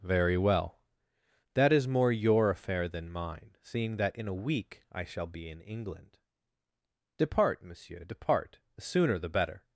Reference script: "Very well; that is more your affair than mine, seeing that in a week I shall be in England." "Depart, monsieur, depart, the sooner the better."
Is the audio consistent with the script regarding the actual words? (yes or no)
yes